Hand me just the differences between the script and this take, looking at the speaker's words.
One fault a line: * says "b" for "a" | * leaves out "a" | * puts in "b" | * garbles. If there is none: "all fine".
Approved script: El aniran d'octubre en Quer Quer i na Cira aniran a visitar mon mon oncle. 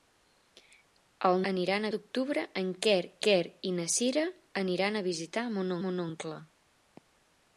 all fine